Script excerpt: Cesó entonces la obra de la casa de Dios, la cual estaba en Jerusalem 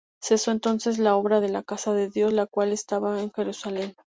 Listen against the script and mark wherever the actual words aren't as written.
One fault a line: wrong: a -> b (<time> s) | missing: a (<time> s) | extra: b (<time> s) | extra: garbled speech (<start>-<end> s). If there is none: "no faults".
no faults